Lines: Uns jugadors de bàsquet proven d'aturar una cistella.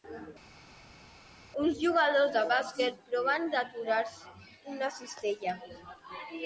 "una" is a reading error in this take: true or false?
false